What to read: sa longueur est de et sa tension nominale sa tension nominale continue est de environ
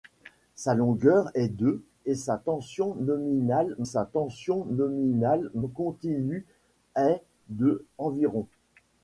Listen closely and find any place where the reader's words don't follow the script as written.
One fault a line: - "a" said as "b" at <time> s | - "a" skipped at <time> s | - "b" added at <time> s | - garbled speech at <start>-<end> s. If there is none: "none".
none